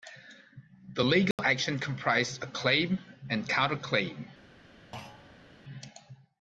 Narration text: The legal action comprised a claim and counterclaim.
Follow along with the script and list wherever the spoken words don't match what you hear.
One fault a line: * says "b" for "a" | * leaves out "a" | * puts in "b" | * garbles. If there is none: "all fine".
all fine